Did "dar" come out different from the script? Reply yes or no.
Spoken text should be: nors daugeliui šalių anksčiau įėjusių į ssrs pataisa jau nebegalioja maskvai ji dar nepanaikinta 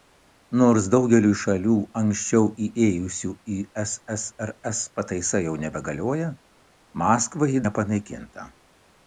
yes